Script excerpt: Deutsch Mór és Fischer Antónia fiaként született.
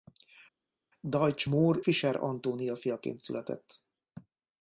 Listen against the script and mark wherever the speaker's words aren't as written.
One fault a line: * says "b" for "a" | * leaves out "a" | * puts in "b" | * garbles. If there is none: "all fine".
* leaves out "és"